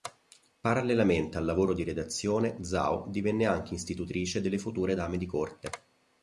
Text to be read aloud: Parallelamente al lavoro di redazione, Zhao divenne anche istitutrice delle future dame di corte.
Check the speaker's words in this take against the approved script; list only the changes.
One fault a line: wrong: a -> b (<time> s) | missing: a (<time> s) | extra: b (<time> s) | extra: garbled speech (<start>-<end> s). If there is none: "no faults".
no faults